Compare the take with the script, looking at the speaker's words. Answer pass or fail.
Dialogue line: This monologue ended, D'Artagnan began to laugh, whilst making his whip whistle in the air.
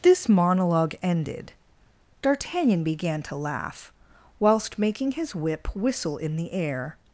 pass